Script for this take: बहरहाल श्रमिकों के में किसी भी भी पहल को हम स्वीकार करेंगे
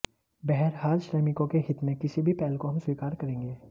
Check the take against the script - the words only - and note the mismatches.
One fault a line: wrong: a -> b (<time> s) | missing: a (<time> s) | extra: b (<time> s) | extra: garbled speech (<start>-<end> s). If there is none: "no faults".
extra: हित (1.7 s)
missing: भी (2.3 s)